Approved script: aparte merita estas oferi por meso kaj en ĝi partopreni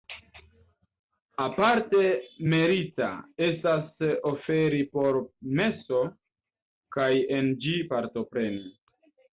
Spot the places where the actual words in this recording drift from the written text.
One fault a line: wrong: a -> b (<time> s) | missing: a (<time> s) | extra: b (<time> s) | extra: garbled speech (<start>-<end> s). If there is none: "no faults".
no faults